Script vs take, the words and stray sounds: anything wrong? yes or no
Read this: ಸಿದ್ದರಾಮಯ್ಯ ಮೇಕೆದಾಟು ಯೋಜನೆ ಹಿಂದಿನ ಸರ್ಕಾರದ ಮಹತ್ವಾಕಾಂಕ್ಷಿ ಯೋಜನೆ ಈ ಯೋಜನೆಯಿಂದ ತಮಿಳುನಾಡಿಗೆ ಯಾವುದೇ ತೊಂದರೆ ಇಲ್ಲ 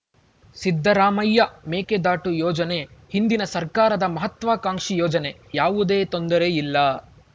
yes